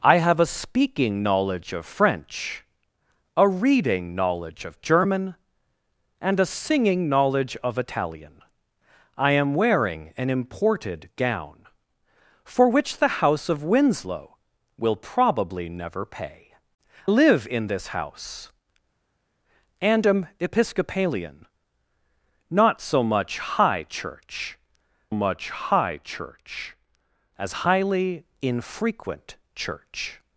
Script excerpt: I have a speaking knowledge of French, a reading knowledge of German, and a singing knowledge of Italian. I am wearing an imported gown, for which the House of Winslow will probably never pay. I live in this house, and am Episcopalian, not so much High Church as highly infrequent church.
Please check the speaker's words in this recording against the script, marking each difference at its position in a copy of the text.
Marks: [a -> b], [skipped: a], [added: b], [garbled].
I have a speaking knowledge of French, a reading knowledge of German, and a singing knowledge of Italian. I am wearing an imported gown, for which the House of Winslow will probably never pay. [skipped: I] live in this house, and am Episcopalian, not so much High Church [added: much High Church] as highly infrequent church.